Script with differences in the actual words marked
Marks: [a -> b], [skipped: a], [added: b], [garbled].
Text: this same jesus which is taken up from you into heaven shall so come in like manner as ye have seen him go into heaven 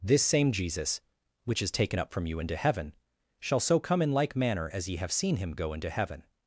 this same jesus which is taken up from you into heaven shall so come in like manner as ye have seen him go into heaven